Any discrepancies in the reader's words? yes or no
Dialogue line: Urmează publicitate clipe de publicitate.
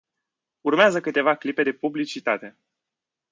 yes